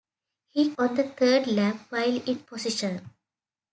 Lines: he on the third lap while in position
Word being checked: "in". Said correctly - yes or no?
yes